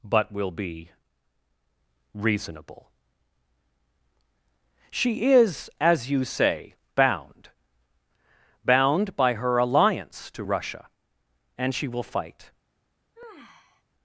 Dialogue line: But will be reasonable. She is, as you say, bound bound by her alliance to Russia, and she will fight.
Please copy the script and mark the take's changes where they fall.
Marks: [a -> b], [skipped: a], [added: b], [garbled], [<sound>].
But will be reasonable. She is, as you say, bound bound by her alliance to Russia, and she will fight. [sigh]